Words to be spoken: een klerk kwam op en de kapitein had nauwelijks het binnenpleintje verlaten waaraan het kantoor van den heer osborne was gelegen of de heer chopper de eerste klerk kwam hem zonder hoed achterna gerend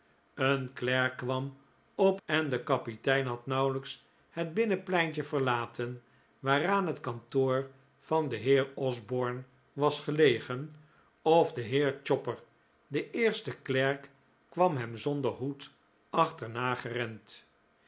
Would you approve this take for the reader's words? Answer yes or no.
yes